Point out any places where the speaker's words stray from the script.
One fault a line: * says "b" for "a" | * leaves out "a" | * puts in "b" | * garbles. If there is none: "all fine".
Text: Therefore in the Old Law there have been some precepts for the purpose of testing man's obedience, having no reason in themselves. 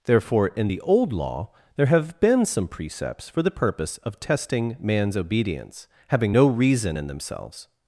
all fine